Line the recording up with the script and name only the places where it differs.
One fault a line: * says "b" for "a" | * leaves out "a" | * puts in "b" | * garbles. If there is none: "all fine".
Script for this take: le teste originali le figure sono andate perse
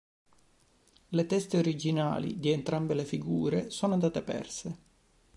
* puts in "di entrambe"